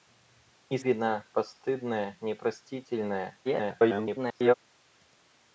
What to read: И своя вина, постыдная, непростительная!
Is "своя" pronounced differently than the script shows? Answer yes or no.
yes